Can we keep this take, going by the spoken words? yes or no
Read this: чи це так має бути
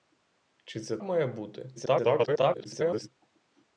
no